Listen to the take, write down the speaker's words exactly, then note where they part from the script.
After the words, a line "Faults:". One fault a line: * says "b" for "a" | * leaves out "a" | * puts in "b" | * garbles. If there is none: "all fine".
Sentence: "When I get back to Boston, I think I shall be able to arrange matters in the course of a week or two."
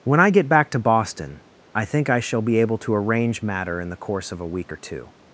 "When I get back to Boston, I think I shall be able to arrange matter in the course of a week or two."
Faults:
* says "matter" for "matters"